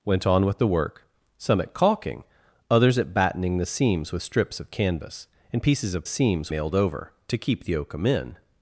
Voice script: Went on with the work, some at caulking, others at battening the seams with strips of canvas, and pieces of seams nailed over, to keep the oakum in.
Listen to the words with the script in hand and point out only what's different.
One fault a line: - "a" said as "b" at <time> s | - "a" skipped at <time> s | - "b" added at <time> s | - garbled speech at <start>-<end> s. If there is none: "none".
none